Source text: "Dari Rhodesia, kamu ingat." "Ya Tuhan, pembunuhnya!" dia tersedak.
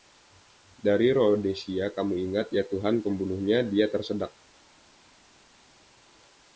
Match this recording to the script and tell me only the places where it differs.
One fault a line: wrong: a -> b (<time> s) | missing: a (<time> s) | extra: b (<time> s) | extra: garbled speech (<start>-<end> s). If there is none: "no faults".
no faults